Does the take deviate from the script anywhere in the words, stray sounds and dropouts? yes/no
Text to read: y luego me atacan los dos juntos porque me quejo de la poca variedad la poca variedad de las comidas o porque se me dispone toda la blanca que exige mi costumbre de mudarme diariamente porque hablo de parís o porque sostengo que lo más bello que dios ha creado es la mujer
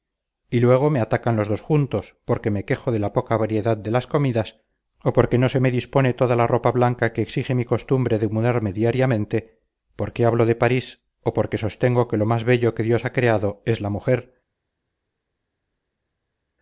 yes